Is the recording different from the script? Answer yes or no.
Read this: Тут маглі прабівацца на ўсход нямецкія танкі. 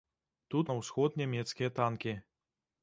yes